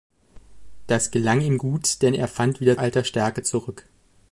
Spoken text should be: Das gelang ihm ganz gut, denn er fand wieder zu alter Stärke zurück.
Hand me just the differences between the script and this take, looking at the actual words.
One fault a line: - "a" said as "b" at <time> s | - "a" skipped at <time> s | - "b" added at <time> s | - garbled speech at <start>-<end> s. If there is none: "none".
- "ganz" skipped at 1.6 s
- "zu" skipped at 2.8 s